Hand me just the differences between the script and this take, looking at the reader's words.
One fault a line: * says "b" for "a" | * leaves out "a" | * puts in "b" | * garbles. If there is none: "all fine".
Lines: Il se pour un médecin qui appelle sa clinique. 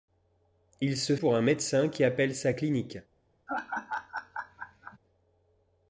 all fine